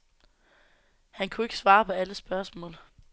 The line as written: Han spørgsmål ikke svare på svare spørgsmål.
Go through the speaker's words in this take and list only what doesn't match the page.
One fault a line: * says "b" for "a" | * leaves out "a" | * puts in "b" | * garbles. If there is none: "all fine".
* says "kunne" for "spørgsmål"
* says "alle" for "svare"